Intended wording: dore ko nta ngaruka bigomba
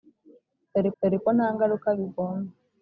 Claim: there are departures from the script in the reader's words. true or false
true